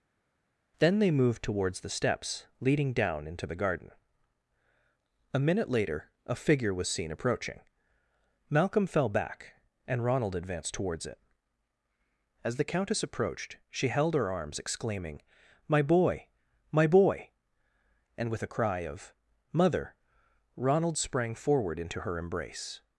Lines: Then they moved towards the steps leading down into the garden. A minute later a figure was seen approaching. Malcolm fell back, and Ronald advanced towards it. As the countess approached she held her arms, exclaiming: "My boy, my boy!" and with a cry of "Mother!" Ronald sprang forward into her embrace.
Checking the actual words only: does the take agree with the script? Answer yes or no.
yes